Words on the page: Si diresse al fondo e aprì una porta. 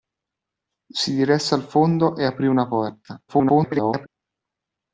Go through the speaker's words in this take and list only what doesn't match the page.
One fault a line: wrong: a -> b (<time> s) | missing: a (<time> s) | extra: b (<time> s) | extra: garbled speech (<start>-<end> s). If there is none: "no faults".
extra: garbled speech (3.3-4.1 s)